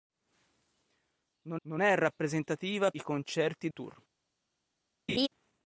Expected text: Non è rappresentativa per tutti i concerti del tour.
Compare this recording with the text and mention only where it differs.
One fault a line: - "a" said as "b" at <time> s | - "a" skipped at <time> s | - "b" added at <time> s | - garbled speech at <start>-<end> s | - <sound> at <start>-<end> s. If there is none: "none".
- "non" added at 1.6 s
- "per tutti" skipped at 2.9 s
- "del" skipped at 3.7 s
- laugh at 5.1-5.3 s